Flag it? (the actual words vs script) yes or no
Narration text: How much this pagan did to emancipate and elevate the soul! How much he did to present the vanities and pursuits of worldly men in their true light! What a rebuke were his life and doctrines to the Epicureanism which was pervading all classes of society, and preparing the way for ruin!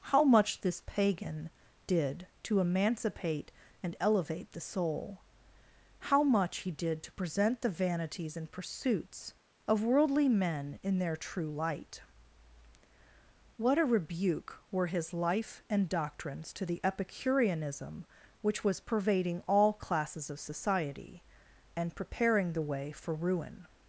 no